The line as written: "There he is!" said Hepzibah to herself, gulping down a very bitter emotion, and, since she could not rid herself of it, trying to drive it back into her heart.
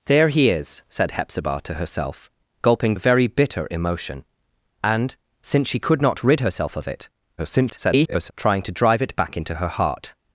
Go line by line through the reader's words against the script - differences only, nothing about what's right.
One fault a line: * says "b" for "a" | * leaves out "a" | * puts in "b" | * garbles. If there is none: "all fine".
* leaves out "down"
* garbles